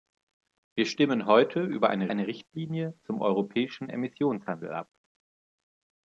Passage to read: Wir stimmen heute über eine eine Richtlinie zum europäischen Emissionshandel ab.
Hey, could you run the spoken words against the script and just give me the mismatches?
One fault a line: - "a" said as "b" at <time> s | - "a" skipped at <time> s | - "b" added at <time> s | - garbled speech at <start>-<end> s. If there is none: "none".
none